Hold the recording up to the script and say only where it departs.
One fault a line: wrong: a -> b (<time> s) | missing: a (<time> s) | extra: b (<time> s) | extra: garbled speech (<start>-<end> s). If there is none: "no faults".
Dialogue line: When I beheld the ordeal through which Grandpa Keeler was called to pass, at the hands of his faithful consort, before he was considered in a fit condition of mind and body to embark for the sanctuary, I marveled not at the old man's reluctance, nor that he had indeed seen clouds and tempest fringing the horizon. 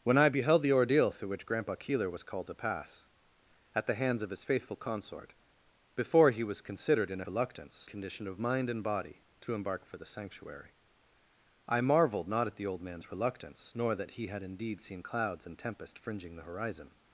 wrong: fit -> reluctance (7.3 s)